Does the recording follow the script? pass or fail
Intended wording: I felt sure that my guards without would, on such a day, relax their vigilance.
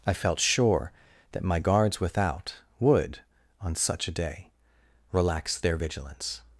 pass